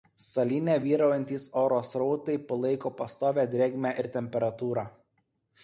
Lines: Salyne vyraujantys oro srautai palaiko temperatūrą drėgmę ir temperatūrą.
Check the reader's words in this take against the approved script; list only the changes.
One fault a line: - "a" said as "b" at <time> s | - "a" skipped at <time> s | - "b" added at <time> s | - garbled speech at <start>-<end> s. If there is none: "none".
- "temperatūrą" said as "pastovią" at 3.0 s